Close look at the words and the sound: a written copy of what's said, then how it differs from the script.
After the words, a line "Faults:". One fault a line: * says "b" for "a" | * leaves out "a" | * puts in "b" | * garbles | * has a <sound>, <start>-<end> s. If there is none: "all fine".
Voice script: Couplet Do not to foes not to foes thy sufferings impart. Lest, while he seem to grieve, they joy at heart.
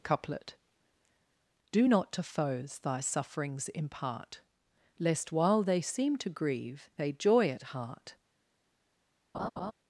Couplet Do not to foes thy sufferings impart. Lest, while they seem to grieve, they joy at heart.
Faults:
* leaves out "not to foes"
* says "they" for "he"
* has a laugh, 9.3-9.7 s